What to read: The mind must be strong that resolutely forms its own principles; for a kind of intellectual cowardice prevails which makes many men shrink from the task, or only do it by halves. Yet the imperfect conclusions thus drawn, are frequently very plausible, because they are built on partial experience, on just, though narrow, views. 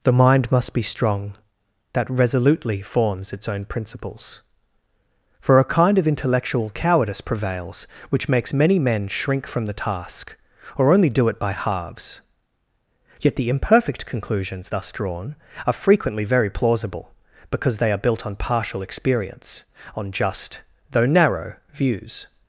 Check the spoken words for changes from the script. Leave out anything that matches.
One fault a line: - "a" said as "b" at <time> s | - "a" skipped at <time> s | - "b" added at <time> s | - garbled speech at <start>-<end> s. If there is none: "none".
none